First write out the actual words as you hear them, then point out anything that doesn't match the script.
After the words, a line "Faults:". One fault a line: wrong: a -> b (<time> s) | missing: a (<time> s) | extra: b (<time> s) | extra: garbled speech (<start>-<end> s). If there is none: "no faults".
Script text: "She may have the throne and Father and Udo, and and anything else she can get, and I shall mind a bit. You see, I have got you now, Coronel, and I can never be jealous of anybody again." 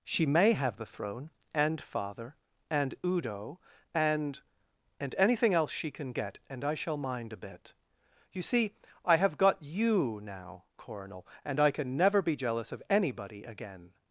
"She may have the throne and Father and Udo, and and anything else she can get, and I shall mind a bit. You see, I have got you now, Coronel, and I can never be jealous of anybody again."
Faults:
no faults